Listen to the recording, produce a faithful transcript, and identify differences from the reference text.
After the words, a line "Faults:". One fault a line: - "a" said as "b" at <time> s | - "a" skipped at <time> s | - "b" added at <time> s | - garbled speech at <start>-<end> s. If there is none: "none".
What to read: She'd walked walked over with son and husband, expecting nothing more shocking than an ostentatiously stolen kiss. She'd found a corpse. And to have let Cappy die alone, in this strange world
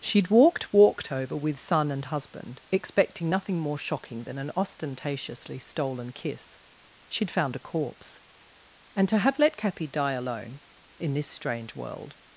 She'd walked walked over with son and husband, expecting nothing more shocking than an ostentatiously stolen kiss. She'd found a corpse. And to have let Cappy die alone, in this strange world
Faults:
none